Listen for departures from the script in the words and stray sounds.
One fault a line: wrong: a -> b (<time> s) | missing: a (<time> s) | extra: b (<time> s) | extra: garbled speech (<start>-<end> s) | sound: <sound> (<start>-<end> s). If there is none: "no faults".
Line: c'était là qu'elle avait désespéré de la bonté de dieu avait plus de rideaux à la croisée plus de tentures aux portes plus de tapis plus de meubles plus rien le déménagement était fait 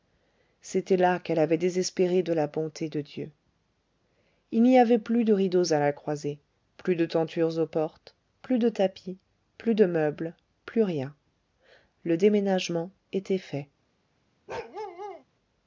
extra: il n'y (4.5 s)
sound: bark (14.5-15.2 s)